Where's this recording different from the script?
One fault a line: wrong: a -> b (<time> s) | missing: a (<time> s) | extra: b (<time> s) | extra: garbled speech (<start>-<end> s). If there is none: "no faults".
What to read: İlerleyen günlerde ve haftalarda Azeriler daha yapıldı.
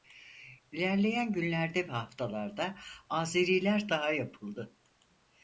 no faults